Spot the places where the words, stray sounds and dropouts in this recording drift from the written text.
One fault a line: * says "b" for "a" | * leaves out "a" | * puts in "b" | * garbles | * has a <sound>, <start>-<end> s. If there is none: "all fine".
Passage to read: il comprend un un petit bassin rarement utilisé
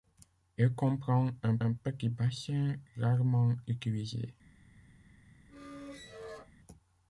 * has a squeak, 5.5-6.5 s